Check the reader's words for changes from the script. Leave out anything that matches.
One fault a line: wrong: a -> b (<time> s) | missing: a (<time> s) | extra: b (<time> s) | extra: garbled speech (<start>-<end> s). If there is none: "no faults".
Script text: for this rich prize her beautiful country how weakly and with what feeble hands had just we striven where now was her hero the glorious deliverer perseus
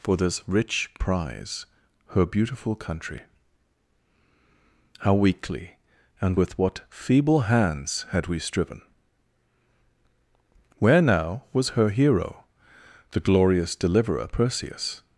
missing: just (8.3 s)